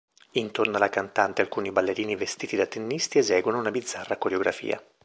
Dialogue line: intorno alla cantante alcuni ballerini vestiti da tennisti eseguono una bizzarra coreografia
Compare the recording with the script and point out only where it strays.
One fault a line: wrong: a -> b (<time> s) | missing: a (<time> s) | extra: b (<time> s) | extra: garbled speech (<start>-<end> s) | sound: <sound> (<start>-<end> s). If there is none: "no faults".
no faults